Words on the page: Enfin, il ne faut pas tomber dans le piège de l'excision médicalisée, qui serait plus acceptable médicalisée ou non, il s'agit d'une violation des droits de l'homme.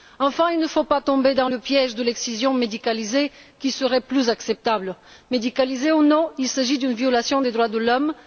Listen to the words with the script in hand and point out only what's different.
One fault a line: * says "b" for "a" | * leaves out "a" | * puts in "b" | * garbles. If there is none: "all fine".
all fine